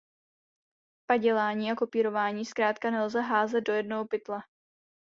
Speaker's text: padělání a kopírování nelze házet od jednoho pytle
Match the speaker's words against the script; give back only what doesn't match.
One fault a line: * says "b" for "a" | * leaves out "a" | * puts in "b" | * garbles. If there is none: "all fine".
* puts in "zkrátka"
* says "do" for "od"